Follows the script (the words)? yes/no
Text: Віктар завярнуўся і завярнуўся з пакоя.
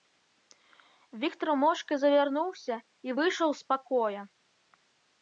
no